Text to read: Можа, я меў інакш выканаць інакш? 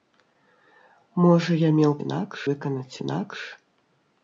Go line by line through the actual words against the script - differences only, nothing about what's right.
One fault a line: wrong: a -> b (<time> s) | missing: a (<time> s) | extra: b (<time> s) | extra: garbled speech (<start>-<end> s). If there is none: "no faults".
no faults